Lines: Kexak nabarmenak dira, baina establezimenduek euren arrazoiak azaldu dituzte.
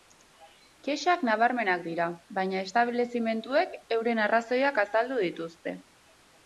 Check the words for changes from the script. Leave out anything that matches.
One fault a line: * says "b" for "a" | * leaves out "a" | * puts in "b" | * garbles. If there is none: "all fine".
all fine